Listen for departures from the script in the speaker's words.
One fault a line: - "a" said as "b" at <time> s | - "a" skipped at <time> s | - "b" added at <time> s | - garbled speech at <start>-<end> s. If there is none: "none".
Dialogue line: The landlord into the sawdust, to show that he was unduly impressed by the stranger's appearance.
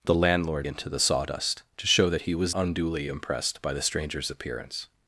none